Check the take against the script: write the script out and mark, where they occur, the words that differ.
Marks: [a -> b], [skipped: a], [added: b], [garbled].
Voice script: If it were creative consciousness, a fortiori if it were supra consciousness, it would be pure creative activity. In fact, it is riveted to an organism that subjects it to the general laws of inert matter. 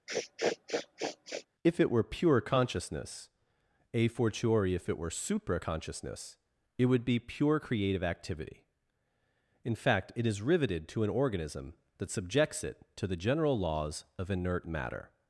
If it were [creative -> pure] consciousness, a fortiori if it were supra consciousness, it would be pure creative activity. In fact, it is riveted to an organism that subjects it to the general laws of inert matter.